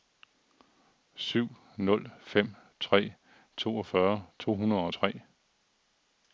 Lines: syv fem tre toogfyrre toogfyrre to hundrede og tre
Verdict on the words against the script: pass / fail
fail